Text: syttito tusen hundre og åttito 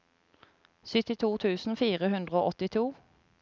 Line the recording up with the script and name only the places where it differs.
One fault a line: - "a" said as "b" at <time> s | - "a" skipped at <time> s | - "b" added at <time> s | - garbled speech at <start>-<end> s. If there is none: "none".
- "fire" added at 1.8 s